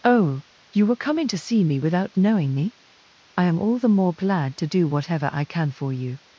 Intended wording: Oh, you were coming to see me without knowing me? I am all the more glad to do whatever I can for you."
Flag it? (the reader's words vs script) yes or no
no